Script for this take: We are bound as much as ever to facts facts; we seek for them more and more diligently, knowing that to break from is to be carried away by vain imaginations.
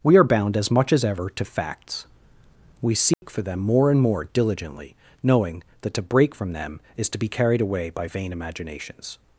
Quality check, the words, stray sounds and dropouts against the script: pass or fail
fail